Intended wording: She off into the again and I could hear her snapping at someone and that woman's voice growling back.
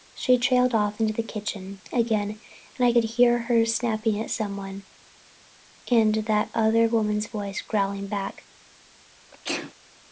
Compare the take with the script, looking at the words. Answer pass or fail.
fail